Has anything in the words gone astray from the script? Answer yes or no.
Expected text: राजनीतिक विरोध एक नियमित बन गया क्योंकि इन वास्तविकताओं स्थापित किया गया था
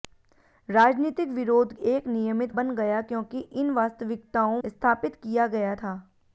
no